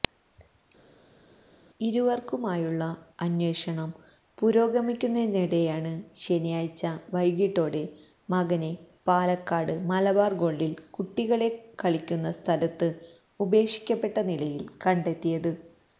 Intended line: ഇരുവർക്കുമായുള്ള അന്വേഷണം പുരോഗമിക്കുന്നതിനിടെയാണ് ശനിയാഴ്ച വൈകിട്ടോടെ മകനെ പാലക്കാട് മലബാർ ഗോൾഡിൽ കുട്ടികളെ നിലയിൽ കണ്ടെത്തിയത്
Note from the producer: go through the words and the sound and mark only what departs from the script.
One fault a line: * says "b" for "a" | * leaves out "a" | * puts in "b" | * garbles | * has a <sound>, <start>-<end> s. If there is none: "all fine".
* puts in "കളിക്കുന്ന സ്ഥലത്ത് ഉപേക്ഷിക്കപ്പെട്ട"